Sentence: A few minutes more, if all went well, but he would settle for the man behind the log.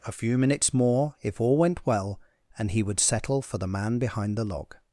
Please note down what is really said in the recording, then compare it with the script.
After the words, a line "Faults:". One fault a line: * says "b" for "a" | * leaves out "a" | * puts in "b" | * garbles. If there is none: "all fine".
A few minutes more, if all went well, and he would settle for the man behind the log.
Faults:
* says "and" for "but"